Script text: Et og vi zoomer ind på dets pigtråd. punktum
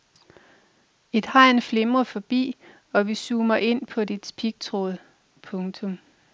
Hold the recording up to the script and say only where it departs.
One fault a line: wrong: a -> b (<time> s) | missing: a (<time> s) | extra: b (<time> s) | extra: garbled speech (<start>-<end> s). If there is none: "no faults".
extra: hegn flimrer forbi (1.2 s)